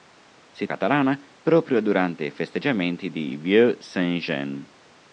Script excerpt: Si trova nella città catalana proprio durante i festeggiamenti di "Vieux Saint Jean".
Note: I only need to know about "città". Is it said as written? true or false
false